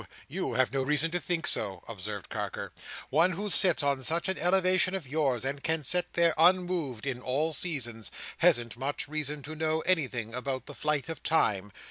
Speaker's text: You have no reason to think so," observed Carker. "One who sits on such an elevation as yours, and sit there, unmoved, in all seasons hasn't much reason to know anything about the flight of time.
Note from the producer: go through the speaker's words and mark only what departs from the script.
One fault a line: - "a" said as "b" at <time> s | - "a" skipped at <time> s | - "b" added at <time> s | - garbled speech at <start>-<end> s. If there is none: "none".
- "can" added at 5.6 s